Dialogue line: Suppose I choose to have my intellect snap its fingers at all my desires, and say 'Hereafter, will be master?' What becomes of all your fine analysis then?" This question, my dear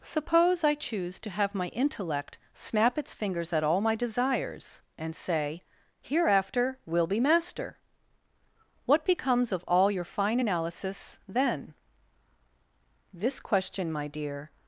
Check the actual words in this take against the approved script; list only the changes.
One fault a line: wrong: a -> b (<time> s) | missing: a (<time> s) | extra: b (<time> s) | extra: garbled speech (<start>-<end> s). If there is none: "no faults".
no faults